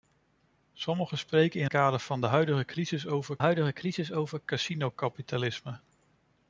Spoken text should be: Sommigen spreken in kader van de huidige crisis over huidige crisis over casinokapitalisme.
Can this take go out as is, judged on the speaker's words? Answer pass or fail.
pass